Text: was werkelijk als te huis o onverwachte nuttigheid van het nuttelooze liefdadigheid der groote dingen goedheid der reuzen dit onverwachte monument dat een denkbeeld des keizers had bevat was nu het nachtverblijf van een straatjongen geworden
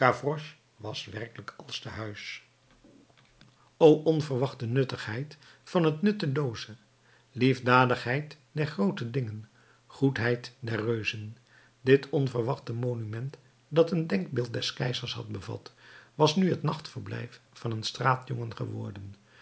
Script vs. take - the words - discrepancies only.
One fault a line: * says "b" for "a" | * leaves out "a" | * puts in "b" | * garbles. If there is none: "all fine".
all fine